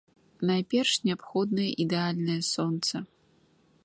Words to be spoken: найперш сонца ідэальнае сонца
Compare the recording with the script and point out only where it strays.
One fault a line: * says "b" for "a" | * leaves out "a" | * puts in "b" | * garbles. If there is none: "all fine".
* says "неабходнае" for "сонца"